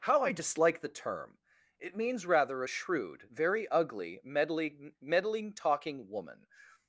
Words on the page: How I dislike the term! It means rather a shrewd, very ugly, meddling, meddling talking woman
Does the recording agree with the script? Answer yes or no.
yes